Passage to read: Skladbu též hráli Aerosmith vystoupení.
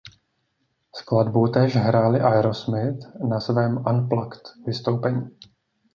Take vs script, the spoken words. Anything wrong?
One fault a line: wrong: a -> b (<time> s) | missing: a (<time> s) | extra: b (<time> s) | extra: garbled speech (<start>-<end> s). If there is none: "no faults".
extra: na svém unplugged (3.3 s)